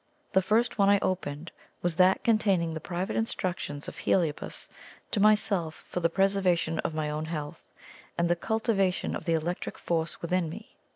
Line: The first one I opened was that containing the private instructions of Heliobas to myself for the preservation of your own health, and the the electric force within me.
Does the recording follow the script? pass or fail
fail